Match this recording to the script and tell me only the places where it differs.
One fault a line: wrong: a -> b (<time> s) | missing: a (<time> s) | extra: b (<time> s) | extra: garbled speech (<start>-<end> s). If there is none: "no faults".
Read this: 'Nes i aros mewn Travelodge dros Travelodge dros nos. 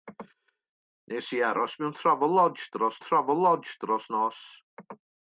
no faults